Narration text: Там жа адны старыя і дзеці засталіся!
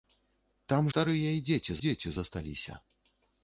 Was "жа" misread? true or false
true